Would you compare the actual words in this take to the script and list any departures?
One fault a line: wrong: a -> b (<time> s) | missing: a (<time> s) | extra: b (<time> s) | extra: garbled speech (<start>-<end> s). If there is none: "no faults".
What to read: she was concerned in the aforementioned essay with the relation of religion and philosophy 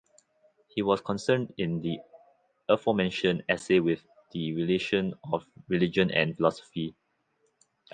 wrong: she -> he (0.7 s)